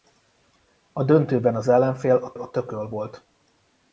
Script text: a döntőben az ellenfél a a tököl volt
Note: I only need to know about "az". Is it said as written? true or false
true